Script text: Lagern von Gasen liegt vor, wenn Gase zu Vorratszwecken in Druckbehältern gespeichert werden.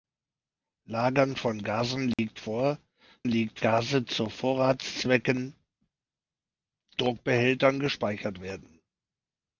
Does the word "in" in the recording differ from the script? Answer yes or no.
yes